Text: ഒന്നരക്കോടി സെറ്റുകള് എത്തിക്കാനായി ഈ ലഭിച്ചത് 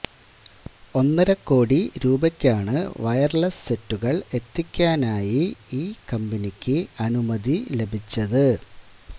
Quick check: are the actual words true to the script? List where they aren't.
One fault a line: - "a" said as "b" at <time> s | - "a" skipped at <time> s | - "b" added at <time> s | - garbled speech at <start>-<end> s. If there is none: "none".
- "രൂപയ്ക്കാണ് വയര്ലെസ്" added at 2.0 s
- "കമ്പനിക്ക് അനുമതി" added at 6.1 s